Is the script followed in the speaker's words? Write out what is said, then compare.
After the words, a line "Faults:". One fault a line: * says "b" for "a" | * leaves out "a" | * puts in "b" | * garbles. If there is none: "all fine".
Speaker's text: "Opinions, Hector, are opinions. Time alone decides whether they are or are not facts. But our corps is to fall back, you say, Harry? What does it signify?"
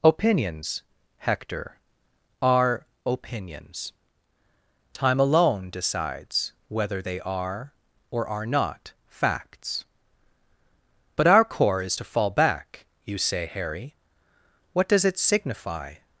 "Opinions, Hector, are opinions. Time alone decides whether they are or are not facts. But our corps is to fall back, you say, Harry? What does it signify?"
Faults:
all fine